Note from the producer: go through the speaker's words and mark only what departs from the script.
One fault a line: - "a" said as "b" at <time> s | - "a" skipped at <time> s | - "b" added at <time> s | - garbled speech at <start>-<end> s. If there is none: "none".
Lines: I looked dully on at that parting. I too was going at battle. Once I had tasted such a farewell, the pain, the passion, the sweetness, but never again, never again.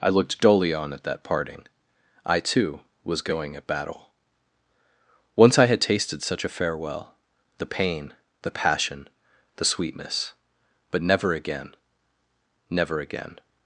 none